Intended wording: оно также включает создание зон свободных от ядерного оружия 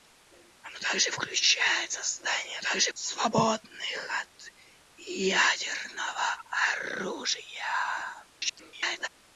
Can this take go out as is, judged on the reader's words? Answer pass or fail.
fail